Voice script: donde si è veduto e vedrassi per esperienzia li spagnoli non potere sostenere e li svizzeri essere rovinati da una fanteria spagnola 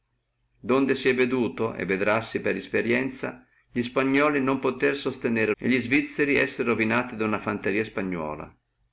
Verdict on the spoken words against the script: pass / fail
pass